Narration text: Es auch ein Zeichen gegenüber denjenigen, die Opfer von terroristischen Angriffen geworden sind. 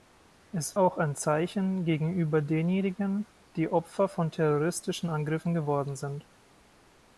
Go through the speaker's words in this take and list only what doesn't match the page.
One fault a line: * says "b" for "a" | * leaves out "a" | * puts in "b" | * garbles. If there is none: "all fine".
all fine